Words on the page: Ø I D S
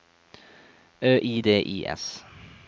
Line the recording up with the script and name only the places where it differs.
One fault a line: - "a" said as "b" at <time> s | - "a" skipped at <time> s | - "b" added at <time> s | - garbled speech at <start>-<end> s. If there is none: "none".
- "I" added at 1.6 s